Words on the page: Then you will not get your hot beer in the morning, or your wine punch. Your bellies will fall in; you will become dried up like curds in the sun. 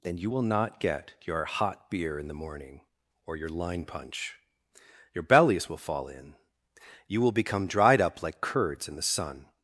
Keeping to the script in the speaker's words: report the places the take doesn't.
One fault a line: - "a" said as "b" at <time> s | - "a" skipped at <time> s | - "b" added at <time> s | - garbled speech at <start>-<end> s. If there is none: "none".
- "wine" said as "line" at 3.5 s